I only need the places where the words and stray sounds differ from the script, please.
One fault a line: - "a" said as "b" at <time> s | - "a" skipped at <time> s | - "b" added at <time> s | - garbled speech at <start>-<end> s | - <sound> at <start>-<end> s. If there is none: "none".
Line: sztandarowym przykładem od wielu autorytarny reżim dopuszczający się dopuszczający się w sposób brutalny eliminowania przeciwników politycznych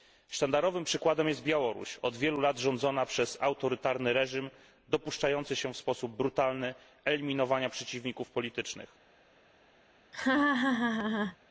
- "jest białoruś" added at 1.3 s
- "lat rządzona przez" added at 2.4 s
- "dopuszczający się" skipped at 5.7 s
- laugh at 10.1-11.4 s